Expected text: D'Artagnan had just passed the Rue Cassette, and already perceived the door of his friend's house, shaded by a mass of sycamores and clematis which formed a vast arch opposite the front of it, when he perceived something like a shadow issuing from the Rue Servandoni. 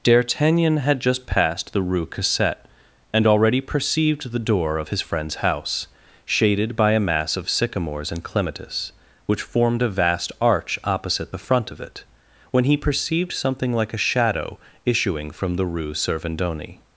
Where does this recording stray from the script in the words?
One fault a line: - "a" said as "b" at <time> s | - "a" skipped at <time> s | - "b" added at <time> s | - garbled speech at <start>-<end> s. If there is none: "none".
none